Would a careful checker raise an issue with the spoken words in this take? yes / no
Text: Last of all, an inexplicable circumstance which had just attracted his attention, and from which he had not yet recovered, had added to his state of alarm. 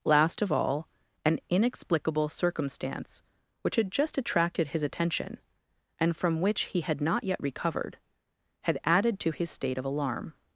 no